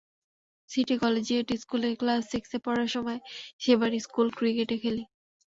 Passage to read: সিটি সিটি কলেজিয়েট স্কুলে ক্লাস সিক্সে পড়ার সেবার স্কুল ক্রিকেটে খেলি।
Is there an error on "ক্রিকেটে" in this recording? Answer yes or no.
no